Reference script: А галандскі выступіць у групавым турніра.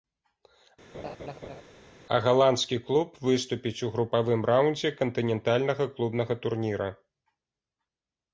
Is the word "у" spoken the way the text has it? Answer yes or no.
yes